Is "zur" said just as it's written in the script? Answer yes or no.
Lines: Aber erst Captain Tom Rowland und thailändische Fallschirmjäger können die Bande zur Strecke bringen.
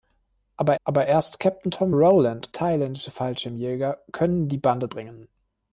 no